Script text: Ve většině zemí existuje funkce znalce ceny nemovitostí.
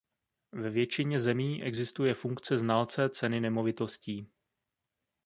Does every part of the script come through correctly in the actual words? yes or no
yes